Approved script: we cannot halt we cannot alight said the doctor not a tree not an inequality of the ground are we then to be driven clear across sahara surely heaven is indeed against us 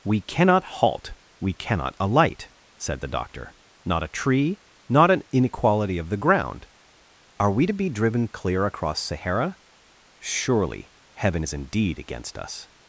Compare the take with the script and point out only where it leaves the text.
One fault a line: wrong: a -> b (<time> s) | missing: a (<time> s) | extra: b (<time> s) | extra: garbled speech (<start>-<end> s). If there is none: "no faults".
missing: then (7.7 s)